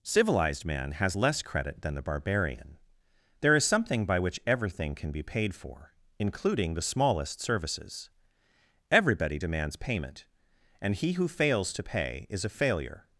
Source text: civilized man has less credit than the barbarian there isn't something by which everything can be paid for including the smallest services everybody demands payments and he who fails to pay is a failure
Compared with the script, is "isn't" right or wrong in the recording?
wrong